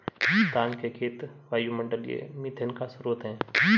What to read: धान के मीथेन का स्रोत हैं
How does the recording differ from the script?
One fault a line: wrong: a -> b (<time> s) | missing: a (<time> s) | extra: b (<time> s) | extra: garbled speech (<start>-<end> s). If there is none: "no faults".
extra: खेत वायुमंडलीय (0.9 s)